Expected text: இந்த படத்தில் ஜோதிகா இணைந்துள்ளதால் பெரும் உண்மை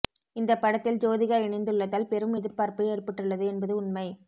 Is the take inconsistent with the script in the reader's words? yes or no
yes